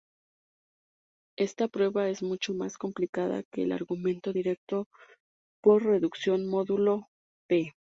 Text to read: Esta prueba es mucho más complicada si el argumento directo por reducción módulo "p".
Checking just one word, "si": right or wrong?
wrong